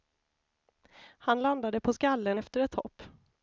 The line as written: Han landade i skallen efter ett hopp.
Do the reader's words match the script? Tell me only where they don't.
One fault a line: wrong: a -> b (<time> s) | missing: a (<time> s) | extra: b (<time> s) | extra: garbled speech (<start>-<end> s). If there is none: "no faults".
wrong: i -> på (1.8 s)